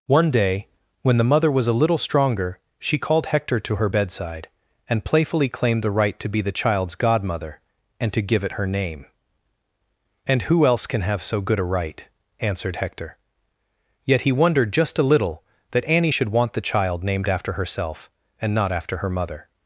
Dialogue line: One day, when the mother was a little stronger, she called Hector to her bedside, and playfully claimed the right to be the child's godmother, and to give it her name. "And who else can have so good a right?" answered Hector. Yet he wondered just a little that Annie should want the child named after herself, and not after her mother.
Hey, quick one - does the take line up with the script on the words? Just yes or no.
yes